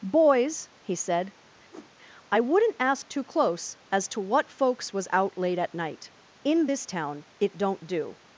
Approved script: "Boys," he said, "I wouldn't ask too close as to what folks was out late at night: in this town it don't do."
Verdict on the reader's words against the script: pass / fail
pass